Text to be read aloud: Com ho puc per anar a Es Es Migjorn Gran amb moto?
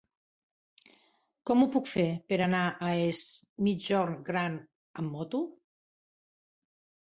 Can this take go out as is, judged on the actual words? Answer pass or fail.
fail